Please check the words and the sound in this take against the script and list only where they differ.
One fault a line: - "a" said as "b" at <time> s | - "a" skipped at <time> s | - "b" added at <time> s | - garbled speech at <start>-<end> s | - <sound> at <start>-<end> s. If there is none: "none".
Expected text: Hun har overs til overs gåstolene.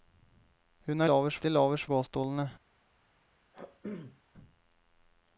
- throat clearing at 3.5-4.2 s